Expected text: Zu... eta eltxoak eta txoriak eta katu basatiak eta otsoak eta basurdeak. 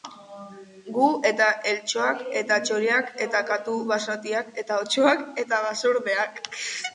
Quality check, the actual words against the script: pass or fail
fail